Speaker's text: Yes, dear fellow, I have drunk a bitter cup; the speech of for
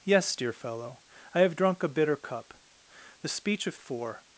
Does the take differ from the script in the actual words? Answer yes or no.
no